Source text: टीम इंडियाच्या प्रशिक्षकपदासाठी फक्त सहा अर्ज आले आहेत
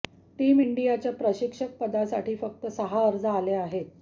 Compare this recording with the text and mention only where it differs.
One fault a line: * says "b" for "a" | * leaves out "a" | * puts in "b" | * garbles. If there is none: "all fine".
all fine